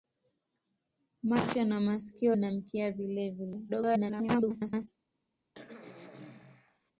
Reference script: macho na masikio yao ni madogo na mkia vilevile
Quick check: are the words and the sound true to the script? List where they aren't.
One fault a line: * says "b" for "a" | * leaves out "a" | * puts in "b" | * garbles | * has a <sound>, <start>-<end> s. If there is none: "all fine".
* leaves out "yao ni madogo"
* garbles
* has a throat clearing, 5.5-6.9 s